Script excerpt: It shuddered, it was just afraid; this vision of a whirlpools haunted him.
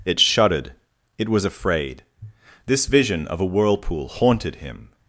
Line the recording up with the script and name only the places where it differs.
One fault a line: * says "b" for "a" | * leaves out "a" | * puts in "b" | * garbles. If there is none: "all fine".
* leaves out "just"
* says "whirlpool" for "whirlpools"